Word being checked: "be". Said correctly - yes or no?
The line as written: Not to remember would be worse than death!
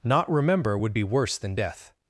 yes